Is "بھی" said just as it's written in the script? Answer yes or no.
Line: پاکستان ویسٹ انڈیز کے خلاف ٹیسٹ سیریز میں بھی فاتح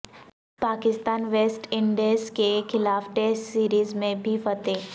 yes